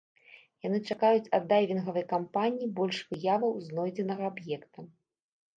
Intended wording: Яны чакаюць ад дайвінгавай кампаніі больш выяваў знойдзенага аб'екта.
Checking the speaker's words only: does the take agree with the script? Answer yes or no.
yes